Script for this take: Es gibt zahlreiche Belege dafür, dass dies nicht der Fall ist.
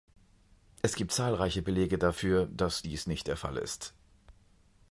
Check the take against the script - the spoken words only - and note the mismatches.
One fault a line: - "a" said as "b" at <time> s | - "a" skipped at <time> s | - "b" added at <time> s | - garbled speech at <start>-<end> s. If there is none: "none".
none